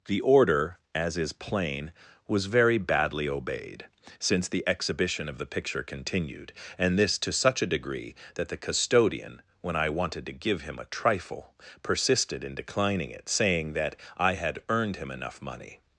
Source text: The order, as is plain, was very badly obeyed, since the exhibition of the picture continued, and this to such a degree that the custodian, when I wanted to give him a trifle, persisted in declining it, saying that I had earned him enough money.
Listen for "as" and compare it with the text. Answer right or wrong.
right